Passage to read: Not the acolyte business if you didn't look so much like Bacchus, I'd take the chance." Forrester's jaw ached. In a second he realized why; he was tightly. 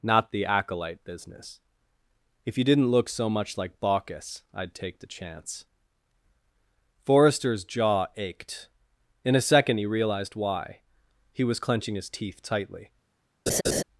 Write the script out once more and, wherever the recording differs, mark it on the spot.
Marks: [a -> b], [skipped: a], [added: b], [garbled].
Not the acolyte business if you didn't look so much like Bacchus, I'd take the chance." Forrester's jaw ached. In a second he realized why; he was [added: clenching his teeth] tightly.